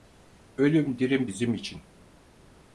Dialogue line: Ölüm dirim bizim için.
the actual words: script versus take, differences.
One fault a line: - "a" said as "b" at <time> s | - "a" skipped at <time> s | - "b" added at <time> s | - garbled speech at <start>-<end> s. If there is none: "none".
none